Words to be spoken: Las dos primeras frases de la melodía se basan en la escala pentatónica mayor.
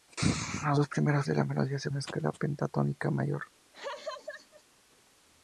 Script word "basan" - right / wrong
wrong